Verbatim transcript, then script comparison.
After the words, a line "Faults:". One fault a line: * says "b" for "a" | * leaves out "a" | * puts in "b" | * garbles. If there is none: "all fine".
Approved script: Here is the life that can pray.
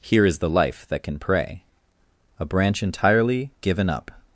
Here is the life that can pray. A branch entirely given up
Faults:
* puts in "A branch entirely given up"